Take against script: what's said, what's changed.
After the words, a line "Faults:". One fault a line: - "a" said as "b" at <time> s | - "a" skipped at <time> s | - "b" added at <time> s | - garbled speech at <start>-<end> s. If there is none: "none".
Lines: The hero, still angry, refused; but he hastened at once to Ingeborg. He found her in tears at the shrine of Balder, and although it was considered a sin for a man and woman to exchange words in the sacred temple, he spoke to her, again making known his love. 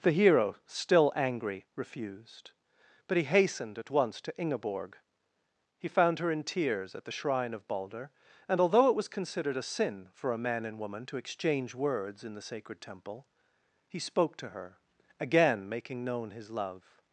The hero, still angry, refused; but he hastened at once to Ingeborg. He found her in tears at the shrine of Balder, and although it was considered a sin for a man and woman to exchange words in the sacred temple, he spoke to her, again making known his love.
Faults:
none